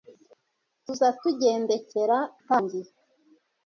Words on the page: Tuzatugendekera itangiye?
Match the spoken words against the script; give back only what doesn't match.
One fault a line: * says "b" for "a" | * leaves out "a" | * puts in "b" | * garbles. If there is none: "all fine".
all fine